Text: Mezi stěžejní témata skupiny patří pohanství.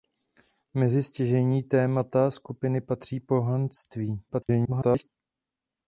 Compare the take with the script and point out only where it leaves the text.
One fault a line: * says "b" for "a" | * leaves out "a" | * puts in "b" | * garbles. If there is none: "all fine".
* garbles